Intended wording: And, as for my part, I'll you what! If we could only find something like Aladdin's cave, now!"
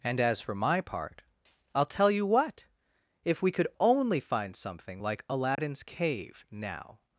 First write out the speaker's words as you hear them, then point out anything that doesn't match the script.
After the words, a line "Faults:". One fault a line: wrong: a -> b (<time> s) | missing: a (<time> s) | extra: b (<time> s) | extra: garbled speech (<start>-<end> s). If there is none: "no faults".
And, as for my part, I'll tell you what! If we could only find something like Aladdin's cave, now!"
Faults:
extra: tell (1.9 s)